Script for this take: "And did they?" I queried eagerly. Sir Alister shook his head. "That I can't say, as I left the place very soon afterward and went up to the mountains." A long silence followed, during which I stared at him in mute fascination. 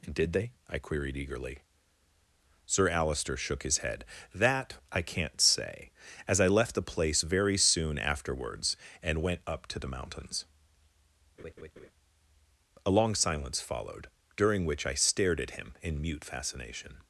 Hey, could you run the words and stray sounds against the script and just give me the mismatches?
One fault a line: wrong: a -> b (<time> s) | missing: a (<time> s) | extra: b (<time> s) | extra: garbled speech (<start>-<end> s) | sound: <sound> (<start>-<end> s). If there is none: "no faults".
wrong: afterward -> afterwards (8.0 s)
sound: laugh (11.4-11.9 s)